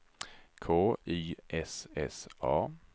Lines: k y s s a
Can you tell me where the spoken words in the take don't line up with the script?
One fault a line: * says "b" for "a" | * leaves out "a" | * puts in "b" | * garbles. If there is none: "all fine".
all fine